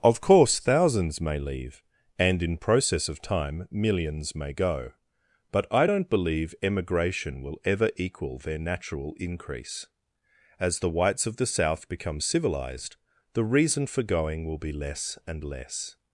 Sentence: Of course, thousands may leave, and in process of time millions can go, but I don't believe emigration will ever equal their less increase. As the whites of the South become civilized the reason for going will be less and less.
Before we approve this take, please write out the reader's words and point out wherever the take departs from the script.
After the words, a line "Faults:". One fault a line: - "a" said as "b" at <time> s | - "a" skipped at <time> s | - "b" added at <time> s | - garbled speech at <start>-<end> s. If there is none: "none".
Of course, thousands may leave, and in process of time millions may go, but I don't believe emigration will ever equal their natural increase. As the whites of the South become civilized the reason for going will be less and less.
Faults:
- "can" said as "may" at 4.3 s
- "less" said as "natural" at 8.6 s